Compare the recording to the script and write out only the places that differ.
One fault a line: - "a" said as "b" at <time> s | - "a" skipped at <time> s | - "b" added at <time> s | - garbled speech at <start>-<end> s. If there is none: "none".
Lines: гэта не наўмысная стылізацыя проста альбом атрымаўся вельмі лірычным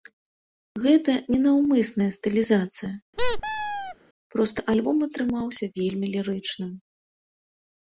none